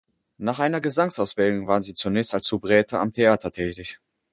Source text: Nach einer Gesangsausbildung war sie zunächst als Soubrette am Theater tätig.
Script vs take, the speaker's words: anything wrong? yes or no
no